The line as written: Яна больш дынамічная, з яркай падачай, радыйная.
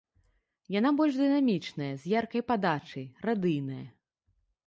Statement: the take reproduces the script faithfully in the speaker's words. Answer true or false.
true